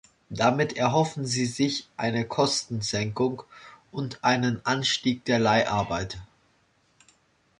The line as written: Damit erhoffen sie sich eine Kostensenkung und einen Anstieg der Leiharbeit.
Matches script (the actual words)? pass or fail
pass